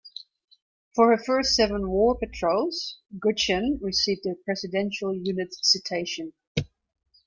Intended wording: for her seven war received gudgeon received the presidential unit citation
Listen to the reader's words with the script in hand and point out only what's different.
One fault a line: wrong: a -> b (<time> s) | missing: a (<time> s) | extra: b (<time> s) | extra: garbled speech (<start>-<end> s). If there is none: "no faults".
extra: first (1.2 s)
wrong: received -> patrols (2.2 s)